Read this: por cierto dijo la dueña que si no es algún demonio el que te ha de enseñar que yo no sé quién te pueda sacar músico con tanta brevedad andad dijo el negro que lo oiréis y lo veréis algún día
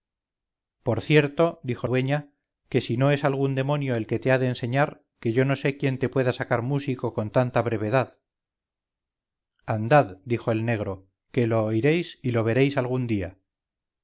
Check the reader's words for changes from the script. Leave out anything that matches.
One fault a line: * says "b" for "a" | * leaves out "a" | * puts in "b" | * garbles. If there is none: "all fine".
* leaves out "la"